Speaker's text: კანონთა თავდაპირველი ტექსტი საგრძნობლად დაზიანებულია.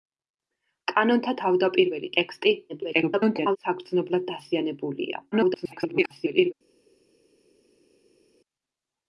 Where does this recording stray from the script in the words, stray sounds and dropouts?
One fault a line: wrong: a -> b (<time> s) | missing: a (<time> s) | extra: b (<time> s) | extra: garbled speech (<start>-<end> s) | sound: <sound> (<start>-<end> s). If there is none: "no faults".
extra: garbled speech (2.7-3.6 s)
extra: garbled speech (5.3-6.5 s)